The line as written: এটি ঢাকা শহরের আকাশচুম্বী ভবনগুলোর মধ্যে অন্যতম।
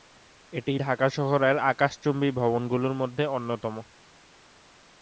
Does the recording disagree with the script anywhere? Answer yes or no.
no